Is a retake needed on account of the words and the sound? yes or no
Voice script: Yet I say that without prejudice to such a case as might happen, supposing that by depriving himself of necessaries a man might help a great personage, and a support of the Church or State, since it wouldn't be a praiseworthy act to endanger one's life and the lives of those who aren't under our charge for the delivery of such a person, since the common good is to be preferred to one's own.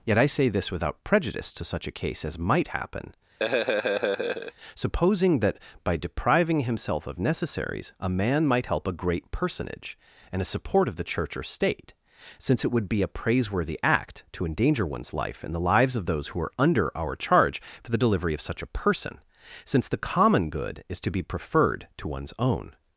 yes